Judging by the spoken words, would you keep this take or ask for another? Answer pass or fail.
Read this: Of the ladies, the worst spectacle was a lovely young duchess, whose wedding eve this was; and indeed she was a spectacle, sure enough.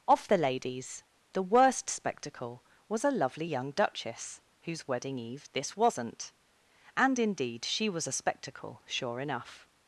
fail